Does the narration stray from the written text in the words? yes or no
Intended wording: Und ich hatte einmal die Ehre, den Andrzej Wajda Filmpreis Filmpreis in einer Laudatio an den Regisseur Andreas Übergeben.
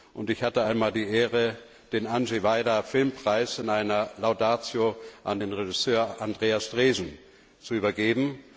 yes